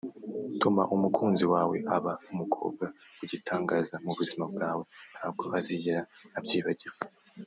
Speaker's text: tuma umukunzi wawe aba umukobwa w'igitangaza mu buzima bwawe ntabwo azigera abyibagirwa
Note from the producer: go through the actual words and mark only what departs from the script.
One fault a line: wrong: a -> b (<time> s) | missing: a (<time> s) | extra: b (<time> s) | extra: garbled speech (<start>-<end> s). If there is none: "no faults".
no faults